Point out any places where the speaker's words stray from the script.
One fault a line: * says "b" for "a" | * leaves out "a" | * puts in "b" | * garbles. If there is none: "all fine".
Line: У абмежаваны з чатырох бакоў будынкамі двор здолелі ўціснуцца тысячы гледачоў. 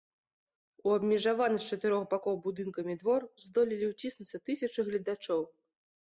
all fine